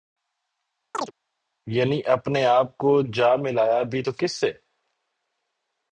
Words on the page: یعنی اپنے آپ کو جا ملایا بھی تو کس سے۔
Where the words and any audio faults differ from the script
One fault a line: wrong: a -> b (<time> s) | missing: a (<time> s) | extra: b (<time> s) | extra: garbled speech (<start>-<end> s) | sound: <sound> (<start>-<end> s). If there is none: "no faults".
sound: chirp (0.9-1.1 s)